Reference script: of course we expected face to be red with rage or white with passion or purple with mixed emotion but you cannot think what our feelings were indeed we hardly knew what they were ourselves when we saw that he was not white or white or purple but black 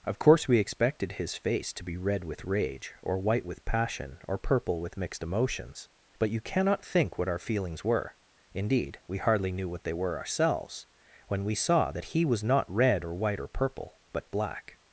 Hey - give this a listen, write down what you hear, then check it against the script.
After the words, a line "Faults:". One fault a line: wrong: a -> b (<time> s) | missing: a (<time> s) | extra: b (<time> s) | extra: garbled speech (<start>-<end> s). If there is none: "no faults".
of course we expected his face to be red with rage or white with passion or purple with mixed emotions but you cannot think what our feelings were indeed we hardly knew what they were ourselves when we saw that he was not red or white or purple but black
Faults:
extra: his (1.1 s)
wrong: emotion -> emotions (5.2 s)
wrong: white -> red (12.7 s)